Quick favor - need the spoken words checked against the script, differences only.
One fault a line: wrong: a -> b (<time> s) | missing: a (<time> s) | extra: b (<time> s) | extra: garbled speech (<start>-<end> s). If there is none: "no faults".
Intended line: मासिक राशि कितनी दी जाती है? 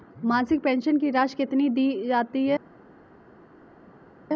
extra: पेंशन की (0.6 s)